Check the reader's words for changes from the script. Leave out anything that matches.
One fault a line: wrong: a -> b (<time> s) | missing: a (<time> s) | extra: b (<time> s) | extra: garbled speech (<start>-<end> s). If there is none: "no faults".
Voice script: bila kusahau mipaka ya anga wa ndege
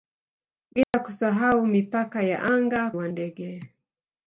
no faults